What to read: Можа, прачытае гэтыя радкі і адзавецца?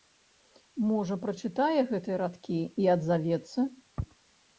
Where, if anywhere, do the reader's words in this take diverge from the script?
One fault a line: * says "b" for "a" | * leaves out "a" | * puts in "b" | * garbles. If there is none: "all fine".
all fine